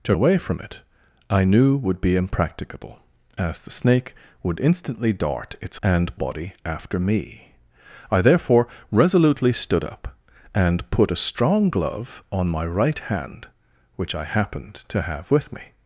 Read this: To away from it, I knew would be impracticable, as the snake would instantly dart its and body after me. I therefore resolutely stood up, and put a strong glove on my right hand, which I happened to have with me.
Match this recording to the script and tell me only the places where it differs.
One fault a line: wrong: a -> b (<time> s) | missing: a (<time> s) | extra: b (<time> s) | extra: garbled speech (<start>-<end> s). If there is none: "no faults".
no faults